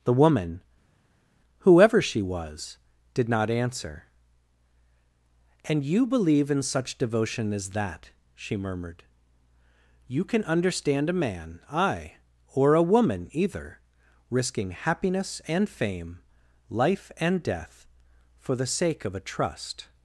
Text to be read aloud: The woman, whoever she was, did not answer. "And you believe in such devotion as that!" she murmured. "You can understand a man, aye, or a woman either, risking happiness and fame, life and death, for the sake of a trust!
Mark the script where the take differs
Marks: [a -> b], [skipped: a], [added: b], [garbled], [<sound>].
The woman, whoever she was, did not answer. "And you believe in such devotion as that!" she murmured. "You can understand a man, aye, or a woman either, risking happiness and fame, life and death, for the sake of a trust!